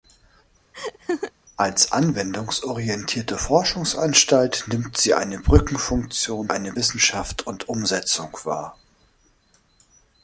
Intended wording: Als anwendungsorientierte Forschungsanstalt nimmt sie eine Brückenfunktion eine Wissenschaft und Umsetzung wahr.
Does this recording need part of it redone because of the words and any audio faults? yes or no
yes